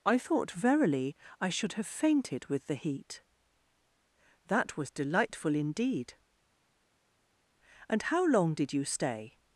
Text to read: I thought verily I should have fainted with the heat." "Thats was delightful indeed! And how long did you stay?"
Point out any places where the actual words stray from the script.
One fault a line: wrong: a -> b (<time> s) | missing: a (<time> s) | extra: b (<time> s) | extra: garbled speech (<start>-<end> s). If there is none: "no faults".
wrong: Thats -> That (4.5 s)